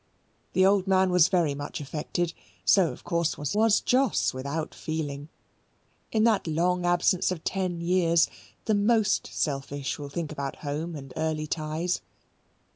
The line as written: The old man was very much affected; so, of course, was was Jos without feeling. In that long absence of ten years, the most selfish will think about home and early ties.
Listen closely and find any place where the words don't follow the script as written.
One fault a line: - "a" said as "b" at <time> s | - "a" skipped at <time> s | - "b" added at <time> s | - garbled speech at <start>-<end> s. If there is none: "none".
none